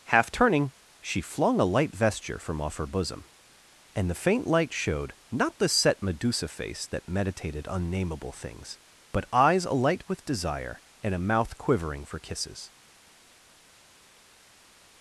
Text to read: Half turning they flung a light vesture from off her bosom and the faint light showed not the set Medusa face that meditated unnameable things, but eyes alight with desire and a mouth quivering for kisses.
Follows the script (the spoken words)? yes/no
no